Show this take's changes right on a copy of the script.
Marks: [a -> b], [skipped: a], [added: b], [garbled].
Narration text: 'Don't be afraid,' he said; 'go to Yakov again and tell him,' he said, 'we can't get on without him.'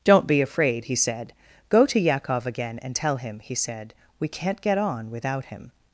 'Don't be afraid,' he said; 'go to Yakov again and tell him,' he said, 'we can't get on without him.'